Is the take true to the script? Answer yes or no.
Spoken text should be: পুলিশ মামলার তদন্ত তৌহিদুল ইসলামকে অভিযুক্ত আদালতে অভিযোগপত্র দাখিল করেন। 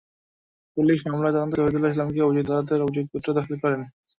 yes